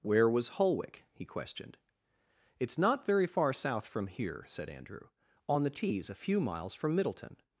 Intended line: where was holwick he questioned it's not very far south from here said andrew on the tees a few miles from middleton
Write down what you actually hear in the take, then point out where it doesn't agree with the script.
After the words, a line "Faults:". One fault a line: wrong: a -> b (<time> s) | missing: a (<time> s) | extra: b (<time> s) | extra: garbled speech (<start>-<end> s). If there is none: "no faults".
where was holwick he questioned it's not very far south from here said andrew on the tees a few miles from middleton
Faults:
no faults